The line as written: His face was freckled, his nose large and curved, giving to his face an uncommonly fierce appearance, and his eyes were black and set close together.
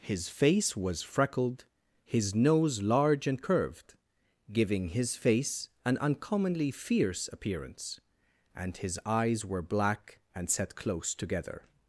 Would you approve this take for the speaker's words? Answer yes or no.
no